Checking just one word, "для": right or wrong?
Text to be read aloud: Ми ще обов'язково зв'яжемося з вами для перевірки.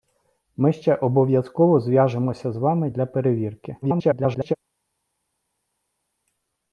right